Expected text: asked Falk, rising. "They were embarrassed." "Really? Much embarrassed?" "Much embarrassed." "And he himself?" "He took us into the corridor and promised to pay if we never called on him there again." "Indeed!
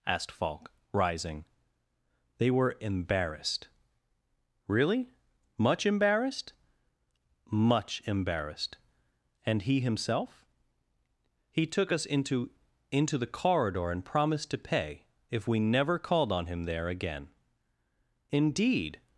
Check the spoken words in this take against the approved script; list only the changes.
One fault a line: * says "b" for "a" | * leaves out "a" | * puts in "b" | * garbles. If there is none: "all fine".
* puts in "into"